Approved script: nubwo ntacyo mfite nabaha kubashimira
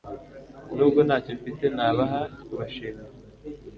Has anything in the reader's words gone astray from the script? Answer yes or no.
no